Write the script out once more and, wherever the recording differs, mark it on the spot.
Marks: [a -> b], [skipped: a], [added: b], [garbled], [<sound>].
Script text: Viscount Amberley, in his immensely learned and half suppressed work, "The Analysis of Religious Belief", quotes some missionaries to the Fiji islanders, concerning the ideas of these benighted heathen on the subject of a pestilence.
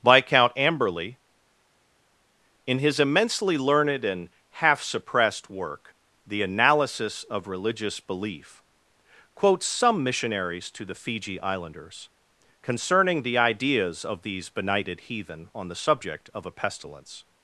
Viscount Amberley, in his immensely learned and half suppressed work, "The Analysis of Religious Belief", quotes some missionaries to the Fiji islanders, concerning the ideas of these benighted heathen on the subject of a pestilence.